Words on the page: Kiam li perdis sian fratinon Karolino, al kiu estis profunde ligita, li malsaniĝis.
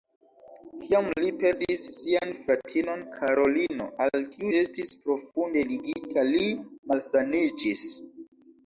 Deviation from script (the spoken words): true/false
false